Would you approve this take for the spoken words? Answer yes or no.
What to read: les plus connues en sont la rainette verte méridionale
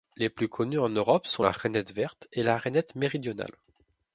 no